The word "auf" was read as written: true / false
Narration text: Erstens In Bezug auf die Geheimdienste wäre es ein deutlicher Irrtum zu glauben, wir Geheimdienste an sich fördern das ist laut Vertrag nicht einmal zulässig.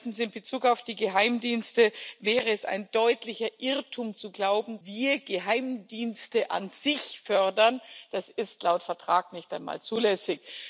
true